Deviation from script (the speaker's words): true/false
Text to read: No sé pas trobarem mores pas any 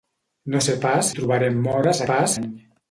false